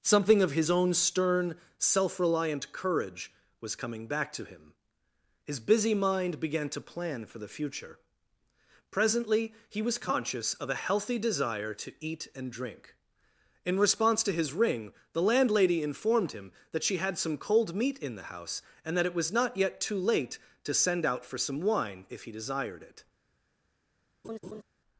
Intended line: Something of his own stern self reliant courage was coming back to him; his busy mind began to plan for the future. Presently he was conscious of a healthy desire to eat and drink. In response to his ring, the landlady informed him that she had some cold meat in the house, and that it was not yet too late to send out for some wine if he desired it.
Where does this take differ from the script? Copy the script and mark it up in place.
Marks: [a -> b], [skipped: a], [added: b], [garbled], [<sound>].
Something of his own stern self reliant courage was coming back to him; his busy mind began to plan for the future. Presently he was conscious of a healthy desire to eat and drink. In response to his ring, the landlady informed him that she had some cold meat in the house, and that it was not yet too late to send out for some wine if he desired it. [laugh]